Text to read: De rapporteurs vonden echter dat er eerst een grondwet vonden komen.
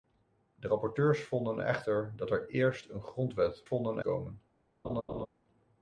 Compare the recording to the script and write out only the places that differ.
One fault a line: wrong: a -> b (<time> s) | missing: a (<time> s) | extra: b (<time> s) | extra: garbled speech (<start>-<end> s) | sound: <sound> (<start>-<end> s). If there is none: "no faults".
sound: laugh (4.8-5.3 s)